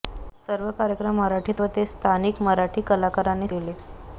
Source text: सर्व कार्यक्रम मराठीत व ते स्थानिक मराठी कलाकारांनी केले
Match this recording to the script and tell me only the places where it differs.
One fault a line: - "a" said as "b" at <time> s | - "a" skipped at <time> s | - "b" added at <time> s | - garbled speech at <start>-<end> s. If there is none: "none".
none